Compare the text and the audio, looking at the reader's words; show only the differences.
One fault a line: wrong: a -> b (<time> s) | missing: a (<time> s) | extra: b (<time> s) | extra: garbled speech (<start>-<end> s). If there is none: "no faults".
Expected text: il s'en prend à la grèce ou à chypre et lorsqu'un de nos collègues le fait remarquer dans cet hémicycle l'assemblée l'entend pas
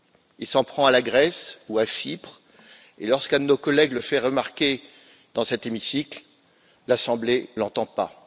no faults